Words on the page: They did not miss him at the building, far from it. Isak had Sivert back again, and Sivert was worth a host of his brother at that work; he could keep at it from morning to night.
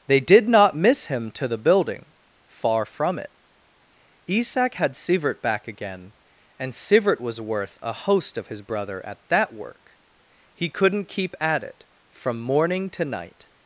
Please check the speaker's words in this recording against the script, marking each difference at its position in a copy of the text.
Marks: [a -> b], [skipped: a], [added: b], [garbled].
They did not miss him [at -> to] the building, far from it. Isak had Sivert back again, and Sivert was worth a host of his brother at that work; he [could -> couldn't] keep at it from morning to night.